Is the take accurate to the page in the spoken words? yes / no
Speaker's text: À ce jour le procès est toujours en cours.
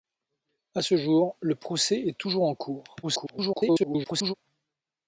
no